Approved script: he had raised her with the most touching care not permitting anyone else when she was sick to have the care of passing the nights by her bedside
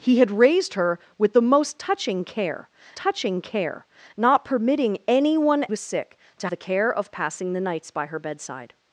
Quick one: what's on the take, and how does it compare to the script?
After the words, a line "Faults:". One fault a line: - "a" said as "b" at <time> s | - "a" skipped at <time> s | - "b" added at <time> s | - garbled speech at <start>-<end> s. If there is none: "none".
he had raised her with the most touching care touching care not permitting anyone was sick to the care of passing the nights by her bedside
Faults:
- "touching care" added at 2.9 s
- "else when she" skipped at 5.7 s
- "have" skipped at 6.5 s